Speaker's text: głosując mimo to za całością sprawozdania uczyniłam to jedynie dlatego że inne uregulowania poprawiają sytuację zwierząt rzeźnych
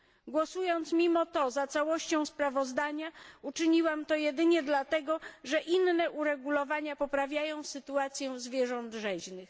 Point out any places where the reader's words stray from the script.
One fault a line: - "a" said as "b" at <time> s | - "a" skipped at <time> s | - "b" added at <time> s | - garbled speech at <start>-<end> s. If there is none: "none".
none